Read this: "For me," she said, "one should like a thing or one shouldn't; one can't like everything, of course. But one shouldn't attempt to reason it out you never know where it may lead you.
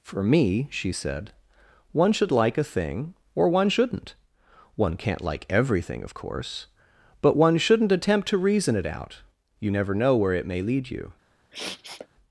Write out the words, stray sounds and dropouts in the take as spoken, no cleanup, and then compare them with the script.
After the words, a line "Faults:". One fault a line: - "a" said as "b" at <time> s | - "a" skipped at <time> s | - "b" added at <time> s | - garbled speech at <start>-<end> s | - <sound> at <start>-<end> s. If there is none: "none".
"For me," she said, "one should like a thing or one shouldn't; one can't like everything, of course. But one shouldn't attempt to reason it out you never know where it may lead you.
Faults:
- sniff at 11.5-12.1 s